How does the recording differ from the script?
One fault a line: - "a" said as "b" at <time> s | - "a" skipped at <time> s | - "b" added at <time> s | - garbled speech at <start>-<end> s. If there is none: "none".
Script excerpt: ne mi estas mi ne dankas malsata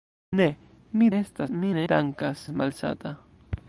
none